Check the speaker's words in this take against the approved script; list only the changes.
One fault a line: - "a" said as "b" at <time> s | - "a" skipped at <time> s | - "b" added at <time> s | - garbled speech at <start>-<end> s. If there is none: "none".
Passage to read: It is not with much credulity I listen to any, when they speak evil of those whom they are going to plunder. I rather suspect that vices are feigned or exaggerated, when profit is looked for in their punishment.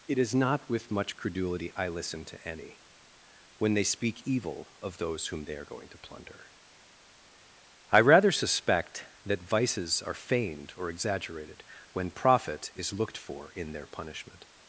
none